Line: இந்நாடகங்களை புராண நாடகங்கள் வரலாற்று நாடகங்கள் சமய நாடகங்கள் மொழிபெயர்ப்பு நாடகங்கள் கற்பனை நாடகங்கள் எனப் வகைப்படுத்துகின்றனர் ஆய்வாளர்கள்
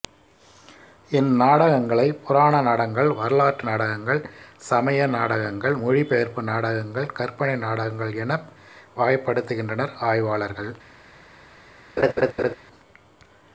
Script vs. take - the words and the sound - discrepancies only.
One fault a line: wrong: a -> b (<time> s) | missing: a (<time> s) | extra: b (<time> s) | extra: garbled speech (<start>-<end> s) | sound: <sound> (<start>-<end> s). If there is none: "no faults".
sound: laugh (12.0-12.6 s)